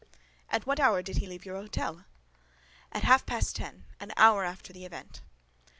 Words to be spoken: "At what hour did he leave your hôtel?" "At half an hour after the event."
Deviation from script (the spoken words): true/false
true